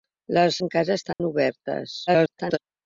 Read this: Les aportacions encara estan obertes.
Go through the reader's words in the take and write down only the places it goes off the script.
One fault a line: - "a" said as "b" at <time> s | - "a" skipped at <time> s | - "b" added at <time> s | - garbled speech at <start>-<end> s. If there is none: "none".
- "aportacions" skipped at 0.6 s
- garbled speech at 2.1-2.6 s